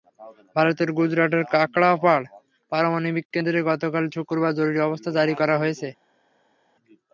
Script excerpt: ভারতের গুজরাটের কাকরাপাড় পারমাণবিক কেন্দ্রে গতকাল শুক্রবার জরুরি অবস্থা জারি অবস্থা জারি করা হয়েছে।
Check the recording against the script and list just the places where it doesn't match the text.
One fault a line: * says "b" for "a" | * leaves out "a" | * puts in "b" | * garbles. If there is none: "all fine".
* leaves out "অবস্থা জারি"